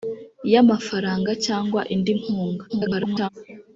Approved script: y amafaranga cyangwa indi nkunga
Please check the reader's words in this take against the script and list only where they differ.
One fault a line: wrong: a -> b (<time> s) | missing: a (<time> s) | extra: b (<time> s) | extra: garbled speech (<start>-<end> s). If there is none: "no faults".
extra: garbled speech (2.7-3.3 s)